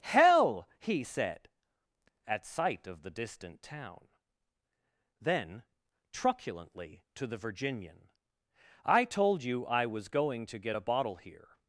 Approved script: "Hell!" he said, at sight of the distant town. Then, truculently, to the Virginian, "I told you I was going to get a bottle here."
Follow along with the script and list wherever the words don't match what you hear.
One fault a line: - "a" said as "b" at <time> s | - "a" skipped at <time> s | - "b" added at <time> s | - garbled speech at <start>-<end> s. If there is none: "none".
none